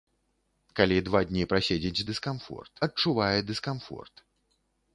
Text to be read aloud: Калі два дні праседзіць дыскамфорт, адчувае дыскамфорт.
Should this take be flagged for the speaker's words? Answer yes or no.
no